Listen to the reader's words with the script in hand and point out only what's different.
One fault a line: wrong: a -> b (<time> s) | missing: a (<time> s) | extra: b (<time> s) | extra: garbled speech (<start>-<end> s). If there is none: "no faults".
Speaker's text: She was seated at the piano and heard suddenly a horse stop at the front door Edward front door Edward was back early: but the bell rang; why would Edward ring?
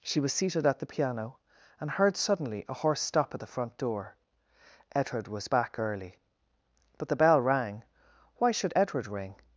missing: front door Edward (5.3 s)
wrong: would -> should (8.5 s)